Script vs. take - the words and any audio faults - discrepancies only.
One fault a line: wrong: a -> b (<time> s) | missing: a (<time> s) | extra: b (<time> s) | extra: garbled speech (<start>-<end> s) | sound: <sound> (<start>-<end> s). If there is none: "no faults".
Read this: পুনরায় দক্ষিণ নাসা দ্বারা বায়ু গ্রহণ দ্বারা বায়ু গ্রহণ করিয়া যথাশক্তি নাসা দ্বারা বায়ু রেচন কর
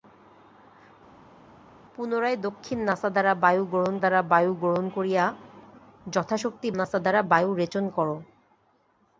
no faults